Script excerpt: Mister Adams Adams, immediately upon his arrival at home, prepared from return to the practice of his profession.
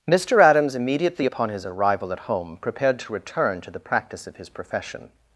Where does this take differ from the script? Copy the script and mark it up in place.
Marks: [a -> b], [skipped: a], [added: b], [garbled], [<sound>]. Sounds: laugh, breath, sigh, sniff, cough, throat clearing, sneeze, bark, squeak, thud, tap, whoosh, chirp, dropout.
Mister Adams [skipped: Adams,] immediately upon his arrival at home, prepared [from -> to] return to the practice of his profession.